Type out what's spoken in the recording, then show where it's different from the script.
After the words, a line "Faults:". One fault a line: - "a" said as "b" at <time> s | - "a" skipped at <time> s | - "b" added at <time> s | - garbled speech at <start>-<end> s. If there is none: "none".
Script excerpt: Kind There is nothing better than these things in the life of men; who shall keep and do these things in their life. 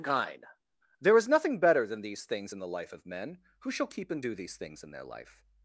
Kind There is nothing better than these things in the life of men; who shall keep and do these things in their life.
Faults:
none